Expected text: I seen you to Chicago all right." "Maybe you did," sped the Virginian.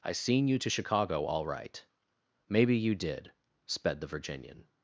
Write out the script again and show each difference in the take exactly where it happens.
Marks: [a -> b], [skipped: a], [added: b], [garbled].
I seen you to Chicago all right." "Maybe you did," sped the Virginian.